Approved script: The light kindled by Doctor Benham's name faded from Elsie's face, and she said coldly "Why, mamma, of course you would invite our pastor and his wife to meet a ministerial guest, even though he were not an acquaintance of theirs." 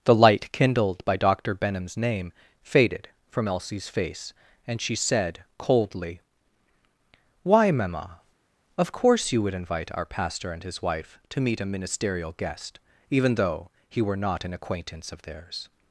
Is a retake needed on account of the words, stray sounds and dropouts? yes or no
no